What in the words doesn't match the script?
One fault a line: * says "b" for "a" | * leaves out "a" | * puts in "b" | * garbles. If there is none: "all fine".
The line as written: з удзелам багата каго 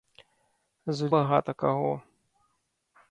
* leaves out "удзелам"